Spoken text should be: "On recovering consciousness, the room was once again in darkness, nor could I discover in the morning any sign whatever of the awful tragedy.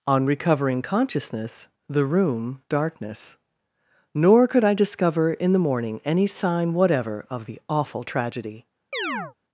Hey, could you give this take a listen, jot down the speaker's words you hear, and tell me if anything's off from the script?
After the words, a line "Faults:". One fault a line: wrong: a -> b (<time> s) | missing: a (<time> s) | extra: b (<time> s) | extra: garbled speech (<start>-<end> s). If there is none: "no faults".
"On recovering consciousness, the room darkness, nor could I discover in the morning any sign whatever of the awful tragedy.
Faults:
missing: was once again in (2.6 s)